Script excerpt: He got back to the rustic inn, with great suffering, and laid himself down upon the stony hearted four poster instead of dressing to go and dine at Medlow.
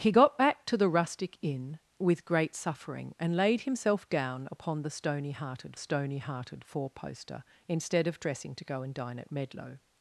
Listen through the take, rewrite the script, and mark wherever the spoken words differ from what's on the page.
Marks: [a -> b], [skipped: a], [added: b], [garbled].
He got back to the rustic inn, with great suffering, and laid himself down upon the stony hearted [added: stony hearted] four poster instead of dressing to go and dine at Medlow.